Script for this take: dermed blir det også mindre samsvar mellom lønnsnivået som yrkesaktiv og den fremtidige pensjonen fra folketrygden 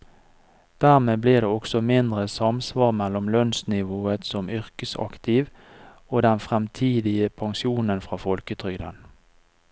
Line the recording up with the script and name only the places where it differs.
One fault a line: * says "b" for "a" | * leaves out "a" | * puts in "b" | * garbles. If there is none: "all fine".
all fine